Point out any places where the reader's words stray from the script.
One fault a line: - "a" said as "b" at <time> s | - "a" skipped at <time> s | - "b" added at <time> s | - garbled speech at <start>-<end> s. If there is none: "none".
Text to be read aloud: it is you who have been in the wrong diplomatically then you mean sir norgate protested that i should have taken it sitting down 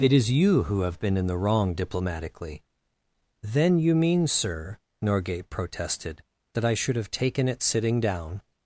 none